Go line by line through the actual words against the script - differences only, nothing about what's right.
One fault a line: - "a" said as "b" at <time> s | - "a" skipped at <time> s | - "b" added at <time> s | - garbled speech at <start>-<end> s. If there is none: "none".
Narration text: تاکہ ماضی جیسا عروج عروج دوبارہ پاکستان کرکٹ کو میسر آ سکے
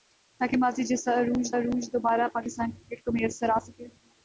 none